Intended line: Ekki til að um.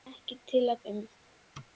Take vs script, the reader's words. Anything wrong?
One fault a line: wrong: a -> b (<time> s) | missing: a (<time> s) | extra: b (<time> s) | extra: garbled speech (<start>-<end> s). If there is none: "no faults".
no faults